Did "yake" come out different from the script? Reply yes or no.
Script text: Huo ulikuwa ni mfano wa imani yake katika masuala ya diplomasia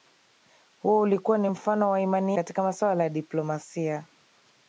yes